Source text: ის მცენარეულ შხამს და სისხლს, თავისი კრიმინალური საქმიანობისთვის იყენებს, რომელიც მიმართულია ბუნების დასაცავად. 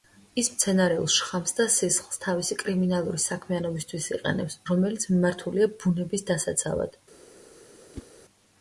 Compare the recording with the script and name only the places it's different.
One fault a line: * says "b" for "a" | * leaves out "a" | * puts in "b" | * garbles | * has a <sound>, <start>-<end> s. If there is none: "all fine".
* has a whoosh, 7.9-8.1 s